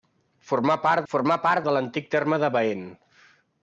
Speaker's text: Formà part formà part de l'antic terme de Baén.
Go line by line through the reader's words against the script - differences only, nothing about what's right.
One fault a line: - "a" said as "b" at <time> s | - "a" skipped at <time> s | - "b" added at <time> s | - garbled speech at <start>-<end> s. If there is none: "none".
none